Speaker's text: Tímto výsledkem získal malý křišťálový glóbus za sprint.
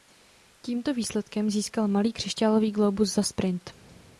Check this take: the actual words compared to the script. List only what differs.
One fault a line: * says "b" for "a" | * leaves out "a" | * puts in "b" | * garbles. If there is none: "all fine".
all fine